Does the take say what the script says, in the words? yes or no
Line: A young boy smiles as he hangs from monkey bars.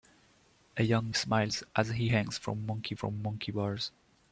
no